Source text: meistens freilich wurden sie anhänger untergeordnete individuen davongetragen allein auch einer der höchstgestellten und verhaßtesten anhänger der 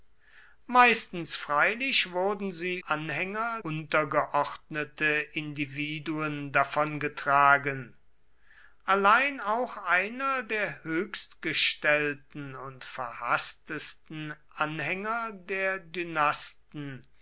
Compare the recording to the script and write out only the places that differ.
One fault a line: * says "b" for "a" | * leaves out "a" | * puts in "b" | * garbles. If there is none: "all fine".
all fine